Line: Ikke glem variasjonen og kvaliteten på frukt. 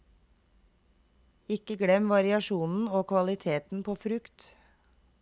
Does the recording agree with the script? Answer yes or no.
yes